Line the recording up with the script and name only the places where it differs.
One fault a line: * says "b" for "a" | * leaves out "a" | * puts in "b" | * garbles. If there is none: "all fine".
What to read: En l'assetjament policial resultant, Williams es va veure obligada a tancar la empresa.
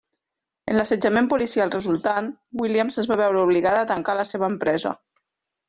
* puts in "seva"